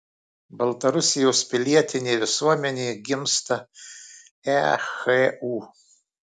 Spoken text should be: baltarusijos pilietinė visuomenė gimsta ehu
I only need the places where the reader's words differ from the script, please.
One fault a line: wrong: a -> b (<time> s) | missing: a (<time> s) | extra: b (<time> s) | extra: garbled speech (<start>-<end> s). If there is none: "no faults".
no faults